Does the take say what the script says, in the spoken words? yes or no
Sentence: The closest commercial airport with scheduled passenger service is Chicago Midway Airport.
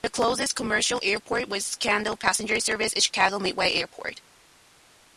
yes